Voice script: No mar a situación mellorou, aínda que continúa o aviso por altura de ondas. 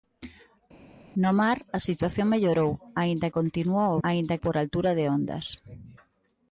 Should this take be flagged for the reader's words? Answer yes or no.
yes